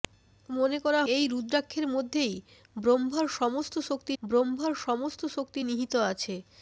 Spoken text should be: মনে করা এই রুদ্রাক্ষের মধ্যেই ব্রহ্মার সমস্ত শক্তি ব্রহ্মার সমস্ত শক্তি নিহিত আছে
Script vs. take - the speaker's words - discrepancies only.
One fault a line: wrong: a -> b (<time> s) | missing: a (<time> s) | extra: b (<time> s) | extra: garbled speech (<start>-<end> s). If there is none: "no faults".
no faults